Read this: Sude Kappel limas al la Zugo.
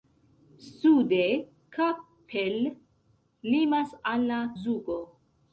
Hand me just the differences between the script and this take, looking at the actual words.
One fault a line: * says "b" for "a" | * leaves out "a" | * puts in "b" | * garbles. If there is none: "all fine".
all fine